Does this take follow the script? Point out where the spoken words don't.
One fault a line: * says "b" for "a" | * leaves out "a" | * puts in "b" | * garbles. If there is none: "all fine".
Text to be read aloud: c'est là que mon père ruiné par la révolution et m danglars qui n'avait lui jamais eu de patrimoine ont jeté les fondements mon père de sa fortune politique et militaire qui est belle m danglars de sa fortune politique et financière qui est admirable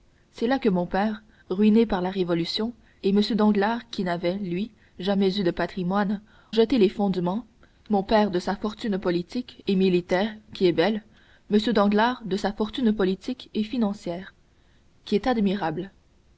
* leaves out "ont"